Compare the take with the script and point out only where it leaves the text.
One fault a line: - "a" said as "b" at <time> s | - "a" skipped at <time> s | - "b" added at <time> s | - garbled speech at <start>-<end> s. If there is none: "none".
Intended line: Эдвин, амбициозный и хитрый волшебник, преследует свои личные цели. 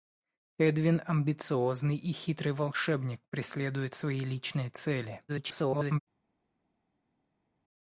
- garbled speech at 5.3-6.0 s